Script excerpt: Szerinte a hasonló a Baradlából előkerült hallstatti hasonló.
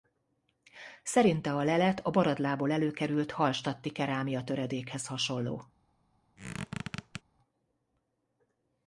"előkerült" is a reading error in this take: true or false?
false